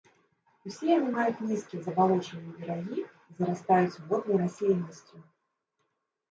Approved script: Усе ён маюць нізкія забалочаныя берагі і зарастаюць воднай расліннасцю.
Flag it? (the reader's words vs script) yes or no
yes